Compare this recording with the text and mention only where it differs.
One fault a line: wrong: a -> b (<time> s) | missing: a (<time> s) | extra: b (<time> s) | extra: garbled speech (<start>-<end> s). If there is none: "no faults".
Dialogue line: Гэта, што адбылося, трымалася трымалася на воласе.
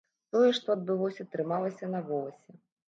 wrong: Гэта -> Тое (0.3 s)
missing: трымалася (1.9 s)